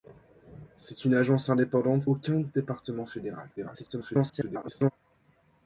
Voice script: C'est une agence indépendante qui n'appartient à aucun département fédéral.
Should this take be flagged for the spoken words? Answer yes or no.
yes